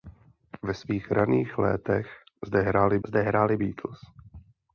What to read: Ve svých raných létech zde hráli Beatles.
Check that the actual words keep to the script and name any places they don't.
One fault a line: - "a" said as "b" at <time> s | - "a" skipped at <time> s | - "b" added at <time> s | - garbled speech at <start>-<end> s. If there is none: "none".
- "zde hráli" added at 3.1 s